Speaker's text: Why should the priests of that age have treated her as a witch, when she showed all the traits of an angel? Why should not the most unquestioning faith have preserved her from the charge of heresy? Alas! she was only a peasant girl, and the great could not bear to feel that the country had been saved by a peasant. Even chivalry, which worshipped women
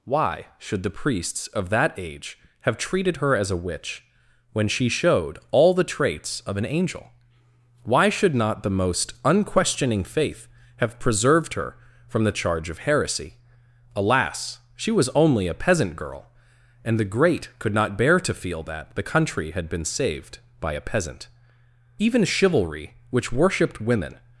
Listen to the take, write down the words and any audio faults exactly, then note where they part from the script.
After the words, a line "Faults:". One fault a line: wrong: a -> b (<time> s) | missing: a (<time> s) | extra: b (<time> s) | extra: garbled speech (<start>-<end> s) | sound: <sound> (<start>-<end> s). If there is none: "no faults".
Why should the priests of that age have treated her as a witch, when she showed all the traits of an angel? Why should not the most unquestioning faith have preserved her from the charge of heresy? Alas! she was only a peasant girl, and the great could not bear to feel that the country had been saved by a peasant. Even chivalry, which worshipped women
Faults:
no faults